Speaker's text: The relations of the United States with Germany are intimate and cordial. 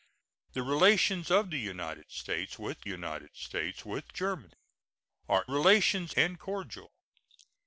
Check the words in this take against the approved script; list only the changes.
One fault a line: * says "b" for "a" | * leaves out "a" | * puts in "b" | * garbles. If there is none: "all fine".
* puts in "United States with"
* says "relations" for "intimate"